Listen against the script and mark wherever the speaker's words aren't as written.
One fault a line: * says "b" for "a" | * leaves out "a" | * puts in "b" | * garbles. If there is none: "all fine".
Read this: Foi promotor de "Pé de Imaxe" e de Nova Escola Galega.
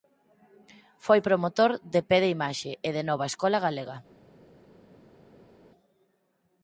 all fine